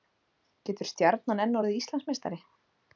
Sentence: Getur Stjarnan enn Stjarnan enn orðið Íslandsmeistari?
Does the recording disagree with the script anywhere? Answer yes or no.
yes